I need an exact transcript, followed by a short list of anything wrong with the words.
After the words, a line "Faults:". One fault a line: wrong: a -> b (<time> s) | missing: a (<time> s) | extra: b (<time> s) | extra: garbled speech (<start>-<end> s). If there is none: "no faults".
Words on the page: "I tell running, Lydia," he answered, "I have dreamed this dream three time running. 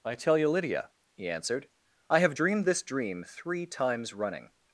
"I tell you, Lydia," he answered, "I have dreamed this dream three times running.
Faults:
wrong: running -> you (0.4 s)
wrong: time -> times (3.7 s)